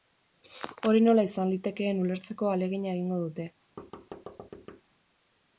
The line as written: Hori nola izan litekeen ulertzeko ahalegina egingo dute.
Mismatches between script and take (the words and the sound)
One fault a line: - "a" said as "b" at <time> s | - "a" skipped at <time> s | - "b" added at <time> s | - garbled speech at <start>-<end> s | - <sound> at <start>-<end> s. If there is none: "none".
- thud at 3.8-4.8 s